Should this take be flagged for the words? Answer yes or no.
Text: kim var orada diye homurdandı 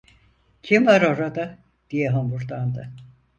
no